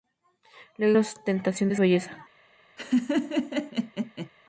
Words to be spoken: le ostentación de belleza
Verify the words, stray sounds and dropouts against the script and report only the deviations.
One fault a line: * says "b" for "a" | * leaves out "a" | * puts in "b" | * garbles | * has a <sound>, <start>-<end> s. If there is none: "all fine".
* has a laugh, 2.8-4.3 s